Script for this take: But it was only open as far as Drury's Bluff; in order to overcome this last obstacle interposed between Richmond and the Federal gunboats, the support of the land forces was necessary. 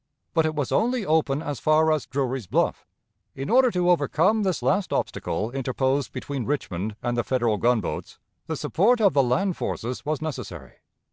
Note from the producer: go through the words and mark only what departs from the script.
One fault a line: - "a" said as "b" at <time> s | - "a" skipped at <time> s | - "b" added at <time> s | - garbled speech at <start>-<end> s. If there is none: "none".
none